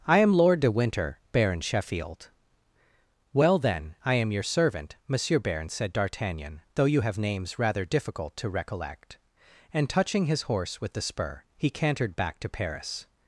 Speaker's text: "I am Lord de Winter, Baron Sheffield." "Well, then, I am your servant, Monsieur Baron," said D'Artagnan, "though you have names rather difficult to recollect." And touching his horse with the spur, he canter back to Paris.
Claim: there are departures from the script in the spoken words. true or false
true